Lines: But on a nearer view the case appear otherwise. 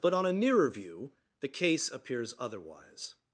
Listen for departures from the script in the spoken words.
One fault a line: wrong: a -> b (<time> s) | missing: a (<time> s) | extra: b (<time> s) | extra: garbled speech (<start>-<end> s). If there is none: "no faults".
wrong: appear -> appears (1.9 s)